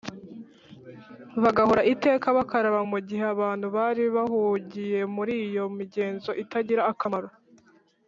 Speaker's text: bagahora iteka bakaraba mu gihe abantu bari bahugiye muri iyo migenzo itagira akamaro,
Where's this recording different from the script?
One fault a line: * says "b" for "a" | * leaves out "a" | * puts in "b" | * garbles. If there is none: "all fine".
all fine